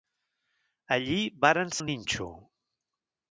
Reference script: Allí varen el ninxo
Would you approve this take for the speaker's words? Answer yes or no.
yes